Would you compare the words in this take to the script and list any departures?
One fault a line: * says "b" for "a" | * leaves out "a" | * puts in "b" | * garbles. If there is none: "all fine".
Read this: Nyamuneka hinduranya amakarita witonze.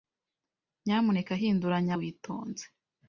* leaves out "amakarita"